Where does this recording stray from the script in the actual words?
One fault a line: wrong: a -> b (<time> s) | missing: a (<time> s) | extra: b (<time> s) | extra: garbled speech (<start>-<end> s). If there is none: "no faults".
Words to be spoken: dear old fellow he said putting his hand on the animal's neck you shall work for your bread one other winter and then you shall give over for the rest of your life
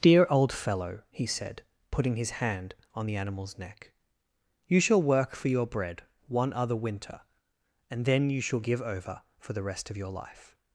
no faults